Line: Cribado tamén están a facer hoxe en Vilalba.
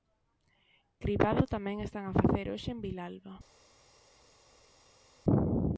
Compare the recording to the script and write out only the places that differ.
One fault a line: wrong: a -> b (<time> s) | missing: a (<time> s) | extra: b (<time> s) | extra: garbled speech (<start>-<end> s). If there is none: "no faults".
no faults